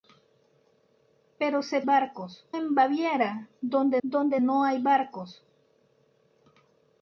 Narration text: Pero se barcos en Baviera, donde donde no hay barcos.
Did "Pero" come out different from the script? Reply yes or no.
no